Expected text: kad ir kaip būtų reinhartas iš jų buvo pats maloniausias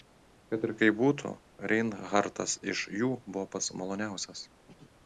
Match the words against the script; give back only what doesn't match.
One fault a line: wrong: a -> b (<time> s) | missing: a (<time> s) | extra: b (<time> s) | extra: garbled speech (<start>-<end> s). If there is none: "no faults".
no faults